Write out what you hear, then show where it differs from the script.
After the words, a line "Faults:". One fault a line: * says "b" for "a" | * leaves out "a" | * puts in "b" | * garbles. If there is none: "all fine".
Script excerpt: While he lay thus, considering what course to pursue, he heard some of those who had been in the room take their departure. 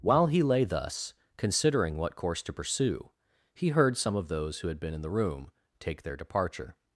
While he lay thus, considering what course to pursue, he heard some of those who had been in the room take their departure.
Faults:
all fine